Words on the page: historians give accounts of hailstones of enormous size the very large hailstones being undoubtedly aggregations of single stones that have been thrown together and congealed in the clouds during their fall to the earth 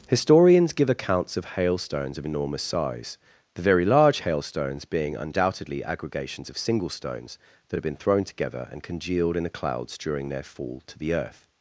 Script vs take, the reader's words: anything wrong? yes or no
no